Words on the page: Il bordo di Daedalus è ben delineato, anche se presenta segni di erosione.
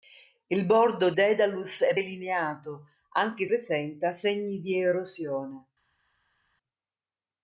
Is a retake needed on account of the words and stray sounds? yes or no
yes